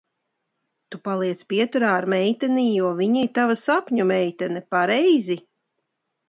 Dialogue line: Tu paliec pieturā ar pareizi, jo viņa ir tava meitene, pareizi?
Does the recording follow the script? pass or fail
fail